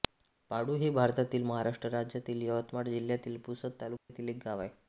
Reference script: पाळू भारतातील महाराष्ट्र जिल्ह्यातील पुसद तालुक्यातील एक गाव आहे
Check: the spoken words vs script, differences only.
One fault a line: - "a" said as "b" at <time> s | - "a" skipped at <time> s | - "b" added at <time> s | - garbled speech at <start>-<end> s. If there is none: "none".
- "हे" added at 0.8 s
- "राज्यातील यवतमाळ" added at 1.9 s